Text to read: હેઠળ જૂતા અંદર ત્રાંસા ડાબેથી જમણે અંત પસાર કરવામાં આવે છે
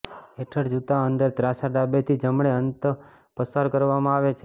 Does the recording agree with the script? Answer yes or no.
yes